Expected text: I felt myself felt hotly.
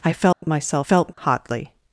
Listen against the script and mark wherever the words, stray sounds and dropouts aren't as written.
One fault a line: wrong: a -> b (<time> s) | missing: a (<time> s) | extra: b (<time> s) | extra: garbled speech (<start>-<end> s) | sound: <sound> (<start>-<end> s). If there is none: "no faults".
sound: dropout (0.3-0.4 s)